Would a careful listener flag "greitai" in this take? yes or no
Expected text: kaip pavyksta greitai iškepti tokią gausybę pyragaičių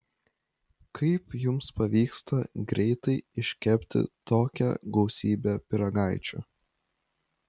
no